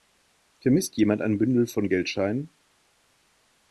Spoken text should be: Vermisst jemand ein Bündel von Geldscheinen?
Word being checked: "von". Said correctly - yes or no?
yes